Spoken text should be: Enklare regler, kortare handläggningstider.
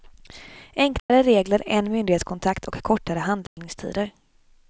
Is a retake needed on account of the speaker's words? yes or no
yes